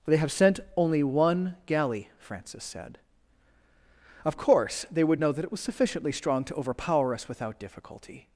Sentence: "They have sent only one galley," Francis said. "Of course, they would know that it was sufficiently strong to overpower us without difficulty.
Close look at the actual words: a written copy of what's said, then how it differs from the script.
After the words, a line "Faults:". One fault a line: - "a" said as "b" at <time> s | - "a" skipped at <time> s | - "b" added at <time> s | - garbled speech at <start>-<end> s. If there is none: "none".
"They have sent only one galley," Francis said. "Of course, they would know that it was sufficiently strong to overpower us without difficulty.
Faults:
none